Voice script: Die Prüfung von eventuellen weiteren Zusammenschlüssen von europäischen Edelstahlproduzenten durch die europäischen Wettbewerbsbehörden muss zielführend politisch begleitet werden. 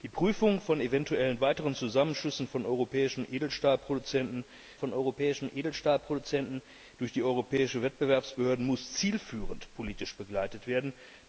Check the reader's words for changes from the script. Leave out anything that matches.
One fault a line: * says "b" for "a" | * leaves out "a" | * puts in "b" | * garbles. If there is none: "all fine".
* puts in "von europäischen Edelstahlproduzenten"